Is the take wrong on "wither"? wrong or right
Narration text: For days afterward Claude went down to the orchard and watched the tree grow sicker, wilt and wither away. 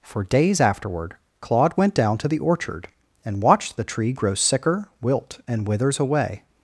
wrong